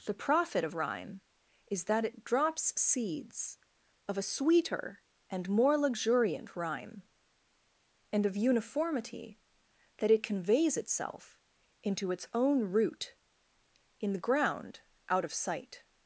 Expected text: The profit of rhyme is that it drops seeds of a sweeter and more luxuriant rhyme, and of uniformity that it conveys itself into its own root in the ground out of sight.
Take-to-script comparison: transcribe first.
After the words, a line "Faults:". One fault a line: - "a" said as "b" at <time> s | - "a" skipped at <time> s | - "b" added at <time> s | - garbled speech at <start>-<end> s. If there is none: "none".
The profit of rhyme is that it drops seeds of a sweeter and more luxuriant rhyme, and of uniformity that it conveys itself into its own root in the ground out of sight.
Faults:
none